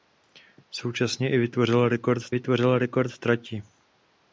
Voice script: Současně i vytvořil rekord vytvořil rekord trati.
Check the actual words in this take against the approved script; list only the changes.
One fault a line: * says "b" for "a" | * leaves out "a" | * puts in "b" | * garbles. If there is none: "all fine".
all fine